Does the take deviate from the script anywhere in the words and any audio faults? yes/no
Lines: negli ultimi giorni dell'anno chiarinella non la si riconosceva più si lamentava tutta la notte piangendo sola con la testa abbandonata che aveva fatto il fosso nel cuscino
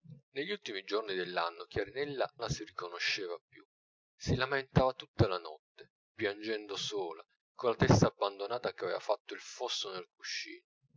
yes